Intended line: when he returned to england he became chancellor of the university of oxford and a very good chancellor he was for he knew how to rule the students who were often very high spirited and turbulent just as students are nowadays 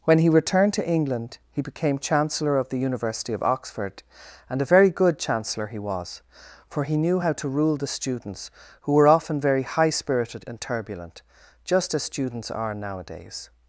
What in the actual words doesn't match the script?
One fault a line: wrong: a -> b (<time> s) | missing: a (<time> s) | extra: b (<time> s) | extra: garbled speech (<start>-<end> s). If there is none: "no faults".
no faults